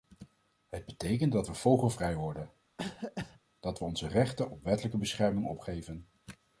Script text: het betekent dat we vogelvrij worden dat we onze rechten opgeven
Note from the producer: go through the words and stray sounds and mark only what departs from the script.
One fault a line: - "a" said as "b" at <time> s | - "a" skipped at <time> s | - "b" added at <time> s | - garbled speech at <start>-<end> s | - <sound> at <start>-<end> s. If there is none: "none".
- cough at 2.8-3.4 s
- "op wettelijke bescherming" added at 4.5 s